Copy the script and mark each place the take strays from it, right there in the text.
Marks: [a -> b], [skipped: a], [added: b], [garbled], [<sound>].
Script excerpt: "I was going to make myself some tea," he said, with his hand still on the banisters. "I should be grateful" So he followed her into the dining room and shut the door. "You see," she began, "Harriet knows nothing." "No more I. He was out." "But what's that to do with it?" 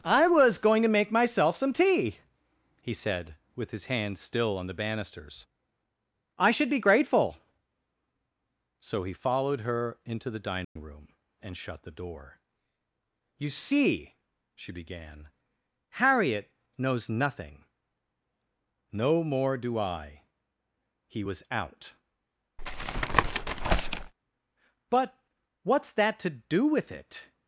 "I was going to make myself some tea," he said, with his hand still on the banisters. "I should be grateful" So he followed her into the dining [dropout] room and shut the door. "You see," she began, "Harriet knows nothing." "No more [added: do] I. He was out." [tap] "But what's that to do with it?"